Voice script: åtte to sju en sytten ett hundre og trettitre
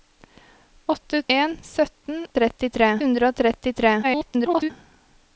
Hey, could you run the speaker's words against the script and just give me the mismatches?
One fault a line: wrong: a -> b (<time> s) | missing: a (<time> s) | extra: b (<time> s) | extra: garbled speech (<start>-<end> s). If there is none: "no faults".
missing: to sju (1.2 s)
wrong: ett -> trettitre (2.4 s)
extra: garbled speech (4.0-4.7 s)